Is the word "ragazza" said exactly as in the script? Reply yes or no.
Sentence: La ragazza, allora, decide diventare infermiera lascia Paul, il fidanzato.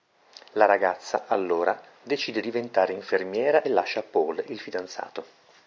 yes